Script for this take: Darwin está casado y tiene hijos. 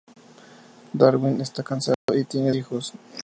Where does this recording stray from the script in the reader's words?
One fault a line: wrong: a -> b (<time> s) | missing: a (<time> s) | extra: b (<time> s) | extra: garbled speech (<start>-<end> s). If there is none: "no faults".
no faults